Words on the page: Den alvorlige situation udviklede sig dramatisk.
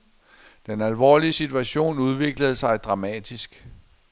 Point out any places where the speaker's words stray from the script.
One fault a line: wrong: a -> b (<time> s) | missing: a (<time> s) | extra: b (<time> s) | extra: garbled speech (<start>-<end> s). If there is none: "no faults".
no faults